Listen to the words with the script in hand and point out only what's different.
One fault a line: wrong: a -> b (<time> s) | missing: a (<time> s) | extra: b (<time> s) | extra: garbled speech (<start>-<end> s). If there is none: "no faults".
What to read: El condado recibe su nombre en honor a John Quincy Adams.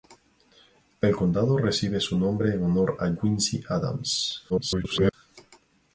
missing: John (3.1 s)
extra: garbled speech (4.5-5.1 s)